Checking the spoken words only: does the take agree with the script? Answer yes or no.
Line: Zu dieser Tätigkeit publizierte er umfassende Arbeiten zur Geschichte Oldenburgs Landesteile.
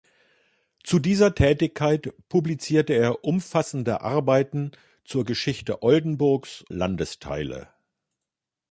yes